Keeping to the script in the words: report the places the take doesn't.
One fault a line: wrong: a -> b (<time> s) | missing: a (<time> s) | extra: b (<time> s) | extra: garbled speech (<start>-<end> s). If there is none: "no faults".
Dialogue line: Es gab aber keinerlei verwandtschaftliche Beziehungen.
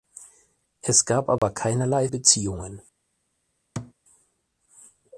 missing: verwandtschaftliche (2.1 s)